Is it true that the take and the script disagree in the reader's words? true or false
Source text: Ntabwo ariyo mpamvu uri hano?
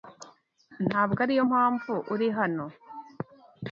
false